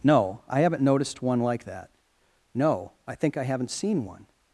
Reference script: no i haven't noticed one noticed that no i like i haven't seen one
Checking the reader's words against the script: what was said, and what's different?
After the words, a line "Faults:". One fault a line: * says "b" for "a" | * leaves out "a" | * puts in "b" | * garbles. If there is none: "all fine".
no i haven't noticed one like that no i think i haven't seen one
Faults:
* says "like" for "noticed"
* says "think" for "like"